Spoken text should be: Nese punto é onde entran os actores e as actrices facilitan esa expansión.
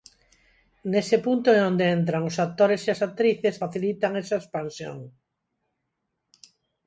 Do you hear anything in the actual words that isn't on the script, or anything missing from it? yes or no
no